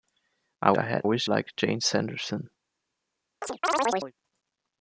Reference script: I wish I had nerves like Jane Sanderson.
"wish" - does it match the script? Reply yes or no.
no